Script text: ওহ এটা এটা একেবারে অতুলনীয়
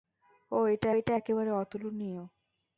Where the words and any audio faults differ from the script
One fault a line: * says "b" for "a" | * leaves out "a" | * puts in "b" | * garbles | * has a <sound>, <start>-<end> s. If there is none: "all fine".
all fine